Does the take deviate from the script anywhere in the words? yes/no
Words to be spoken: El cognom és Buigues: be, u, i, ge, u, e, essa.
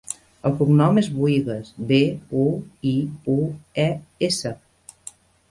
yes